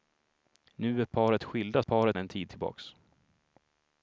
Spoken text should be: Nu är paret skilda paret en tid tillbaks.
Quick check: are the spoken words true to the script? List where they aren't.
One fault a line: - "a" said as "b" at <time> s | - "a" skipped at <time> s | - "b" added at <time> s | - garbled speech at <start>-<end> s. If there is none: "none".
none